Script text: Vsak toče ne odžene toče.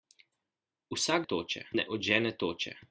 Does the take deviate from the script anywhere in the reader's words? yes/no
no